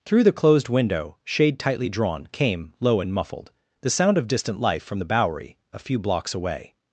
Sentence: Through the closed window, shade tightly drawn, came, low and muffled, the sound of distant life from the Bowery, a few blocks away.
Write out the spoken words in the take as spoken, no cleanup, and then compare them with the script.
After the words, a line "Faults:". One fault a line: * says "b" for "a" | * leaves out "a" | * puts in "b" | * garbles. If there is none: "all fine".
Through the closed window, shade tightly drawn, came, low and muffled, the sound of distant life from the Bowery, a few blocks away.
Faults:
all fine